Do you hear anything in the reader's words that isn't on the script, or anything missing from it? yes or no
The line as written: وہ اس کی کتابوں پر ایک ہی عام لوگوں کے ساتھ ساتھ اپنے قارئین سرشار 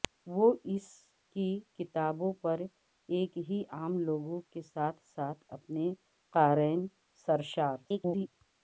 yes